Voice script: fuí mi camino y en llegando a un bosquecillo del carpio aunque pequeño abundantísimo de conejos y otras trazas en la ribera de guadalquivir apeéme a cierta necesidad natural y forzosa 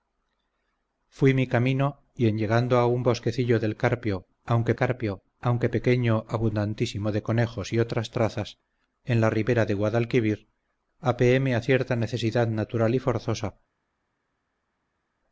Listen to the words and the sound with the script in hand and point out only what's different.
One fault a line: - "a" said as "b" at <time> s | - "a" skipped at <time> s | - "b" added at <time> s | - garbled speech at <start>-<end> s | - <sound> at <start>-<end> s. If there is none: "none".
- "carpio aunque" added at 4.7 s